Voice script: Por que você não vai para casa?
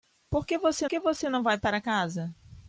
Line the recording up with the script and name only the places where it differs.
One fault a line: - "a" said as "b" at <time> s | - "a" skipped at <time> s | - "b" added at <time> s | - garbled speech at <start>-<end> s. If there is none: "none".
- "que você" added at 0.9 s